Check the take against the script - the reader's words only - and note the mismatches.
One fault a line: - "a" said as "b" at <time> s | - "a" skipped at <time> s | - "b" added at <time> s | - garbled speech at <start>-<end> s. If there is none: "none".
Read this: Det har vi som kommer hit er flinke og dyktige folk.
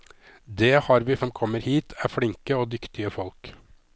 none